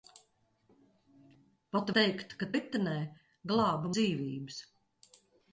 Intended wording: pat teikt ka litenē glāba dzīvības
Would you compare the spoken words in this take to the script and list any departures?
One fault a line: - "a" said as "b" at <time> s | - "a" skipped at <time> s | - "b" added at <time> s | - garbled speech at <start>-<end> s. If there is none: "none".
none